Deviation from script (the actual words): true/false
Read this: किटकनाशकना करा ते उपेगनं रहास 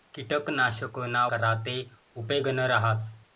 false